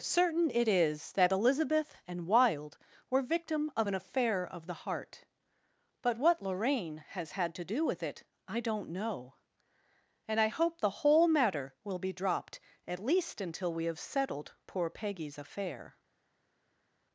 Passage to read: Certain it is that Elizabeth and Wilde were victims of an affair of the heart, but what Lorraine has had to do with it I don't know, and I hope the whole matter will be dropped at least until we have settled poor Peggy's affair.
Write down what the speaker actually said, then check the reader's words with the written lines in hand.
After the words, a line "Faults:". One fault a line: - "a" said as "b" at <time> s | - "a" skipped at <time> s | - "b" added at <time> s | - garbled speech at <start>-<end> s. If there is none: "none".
Certain it is that Elizabeth and Wilde were victim of an affair of the heart, but what Lorraine has had to do with it I don't know, and I hope the whole matter will be dropped at least until we have settled poor Peggy's affair.
Faults:
- "victims" said as "victim" at 3.2 s